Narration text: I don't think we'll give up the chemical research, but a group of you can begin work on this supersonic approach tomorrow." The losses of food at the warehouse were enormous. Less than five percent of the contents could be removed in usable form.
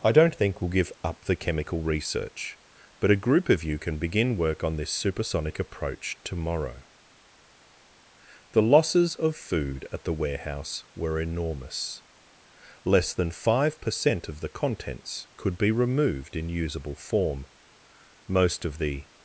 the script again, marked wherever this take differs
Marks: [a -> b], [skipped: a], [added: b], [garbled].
I don't think we'll give up the chemical research, but a group of you can begin work on this supersonic approach tomorrow." The losses of food at the warehouse were enormous. Less than five percent of the contents could be removed in usable form. [added: Most of the]